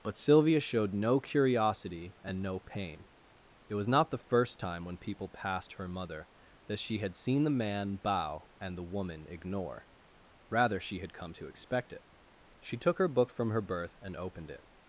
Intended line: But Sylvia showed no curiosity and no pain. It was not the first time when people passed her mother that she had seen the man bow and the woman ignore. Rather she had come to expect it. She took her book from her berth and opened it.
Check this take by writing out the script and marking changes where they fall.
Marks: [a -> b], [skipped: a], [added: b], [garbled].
But Sylvia showed no curiosity and no pain. It was not the first time when people passed her mother that she had seen the man bow and the woman ignore. Rather she had come to expect it. She took her book from her berth and opened it.